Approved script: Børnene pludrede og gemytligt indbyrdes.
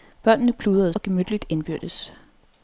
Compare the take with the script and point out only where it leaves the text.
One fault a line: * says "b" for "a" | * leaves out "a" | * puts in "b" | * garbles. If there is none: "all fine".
all fine